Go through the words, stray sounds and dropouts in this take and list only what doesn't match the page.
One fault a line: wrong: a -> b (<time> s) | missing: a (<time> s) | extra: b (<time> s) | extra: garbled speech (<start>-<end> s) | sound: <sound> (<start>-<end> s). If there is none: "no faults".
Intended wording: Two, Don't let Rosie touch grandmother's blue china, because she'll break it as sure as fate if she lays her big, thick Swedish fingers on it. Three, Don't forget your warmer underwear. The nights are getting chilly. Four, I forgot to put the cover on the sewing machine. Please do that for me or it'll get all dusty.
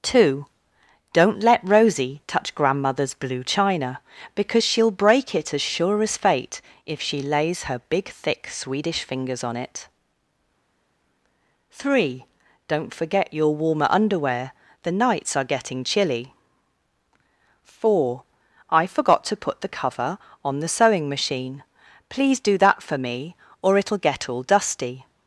no faults